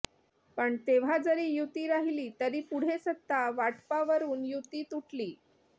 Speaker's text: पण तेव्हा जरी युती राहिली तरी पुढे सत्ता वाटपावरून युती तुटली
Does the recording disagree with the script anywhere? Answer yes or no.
no